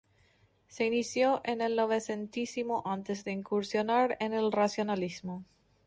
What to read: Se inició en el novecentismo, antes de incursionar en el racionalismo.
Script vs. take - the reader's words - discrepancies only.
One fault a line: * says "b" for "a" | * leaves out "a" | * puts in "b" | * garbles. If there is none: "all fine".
all fine